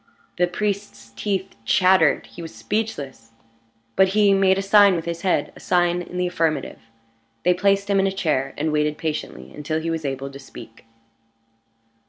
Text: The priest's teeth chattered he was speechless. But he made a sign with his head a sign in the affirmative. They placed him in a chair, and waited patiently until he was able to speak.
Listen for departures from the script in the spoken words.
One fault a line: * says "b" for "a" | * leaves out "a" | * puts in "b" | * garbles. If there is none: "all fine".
all fine